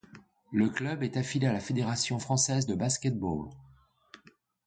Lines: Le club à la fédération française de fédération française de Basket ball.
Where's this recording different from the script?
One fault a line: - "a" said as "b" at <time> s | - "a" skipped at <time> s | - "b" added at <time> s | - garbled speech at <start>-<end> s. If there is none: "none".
- "est affilié" added at 1.0 s
- "fédération française de" skipped at 2.7 s